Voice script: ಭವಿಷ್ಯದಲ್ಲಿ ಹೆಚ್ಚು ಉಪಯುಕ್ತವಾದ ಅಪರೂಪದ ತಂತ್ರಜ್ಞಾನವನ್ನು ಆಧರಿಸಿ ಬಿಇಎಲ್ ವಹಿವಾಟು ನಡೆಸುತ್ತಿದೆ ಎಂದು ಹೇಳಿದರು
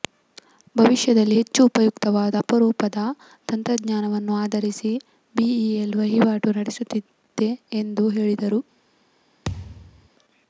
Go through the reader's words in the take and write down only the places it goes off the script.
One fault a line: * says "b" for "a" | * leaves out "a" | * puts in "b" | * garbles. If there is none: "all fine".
all fine